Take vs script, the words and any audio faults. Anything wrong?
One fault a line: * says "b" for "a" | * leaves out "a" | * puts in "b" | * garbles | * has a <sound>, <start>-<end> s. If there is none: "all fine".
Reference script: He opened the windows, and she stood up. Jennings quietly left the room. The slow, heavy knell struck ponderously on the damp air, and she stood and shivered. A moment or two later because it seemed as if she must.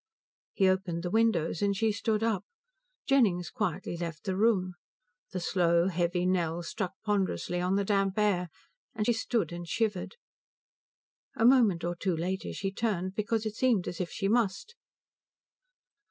* puts in "she turned"